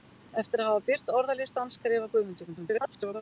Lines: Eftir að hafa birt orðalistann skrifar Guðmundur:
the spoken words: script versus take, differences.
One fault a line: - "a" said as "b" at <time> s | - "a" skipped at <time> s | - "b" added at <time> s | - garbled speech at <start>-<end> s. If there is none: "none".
- garbled speech at 2.5-3.2 s